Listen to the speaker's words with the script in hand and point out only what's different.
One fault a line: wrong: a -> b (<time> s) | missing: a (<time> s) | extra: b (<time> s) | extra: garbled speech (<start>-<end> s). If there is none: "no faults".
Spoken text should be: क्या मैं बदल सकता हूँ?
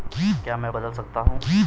no faults